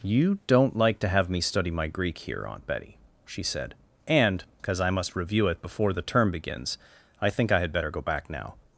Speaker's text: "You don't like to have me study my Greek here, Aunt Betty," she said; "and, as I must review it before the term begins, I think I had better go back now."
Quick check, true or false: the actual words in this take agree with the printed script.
false